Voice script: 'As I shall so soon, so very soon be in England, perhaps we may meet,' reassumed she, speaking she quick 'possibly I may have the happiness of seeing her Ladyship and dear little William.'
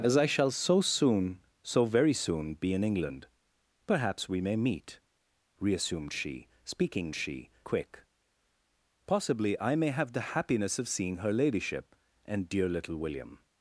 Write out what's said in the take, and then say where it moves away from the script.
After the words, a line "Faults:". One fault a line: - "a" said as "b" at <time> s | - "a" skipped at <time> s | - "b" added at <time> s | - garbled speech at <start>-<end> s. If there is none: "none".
'As I shall so soon, so very soon be in England, perhaps we may meet,' reassumed she, speaking she quick 'possibly I may have the happiness of seeing her Ladyship and dear little William.'
Faults:
none